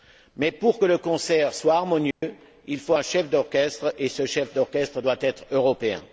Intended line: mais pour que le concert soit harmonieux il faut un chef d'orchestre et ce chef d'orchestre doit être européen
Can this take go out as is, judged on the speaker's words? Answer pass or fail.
pass